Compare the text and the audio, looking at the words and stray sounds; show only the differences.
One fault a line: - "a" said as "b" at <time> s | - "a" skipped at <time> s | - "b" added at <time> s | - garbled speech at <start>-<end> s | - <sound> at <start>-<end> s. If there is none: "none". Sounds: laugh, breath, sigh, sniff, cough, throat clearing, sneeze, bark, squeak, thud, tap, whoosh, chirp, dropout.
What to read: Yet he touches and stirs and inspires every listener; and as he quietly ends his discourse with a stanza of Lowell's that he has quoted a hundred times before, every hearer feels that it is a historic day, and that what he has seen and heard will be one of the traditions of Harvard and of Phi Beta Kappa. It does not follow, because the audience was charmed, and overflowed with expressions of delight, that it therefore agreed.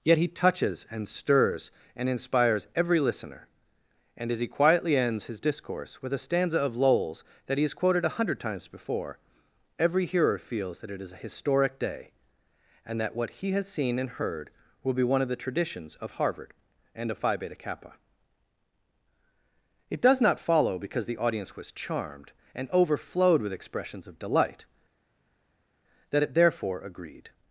none